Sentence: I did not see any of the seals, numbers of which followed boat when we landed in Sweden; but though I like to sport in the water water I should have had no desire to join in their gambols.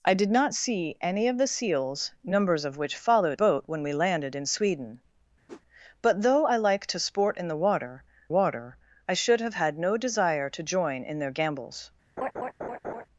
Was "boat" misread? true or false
false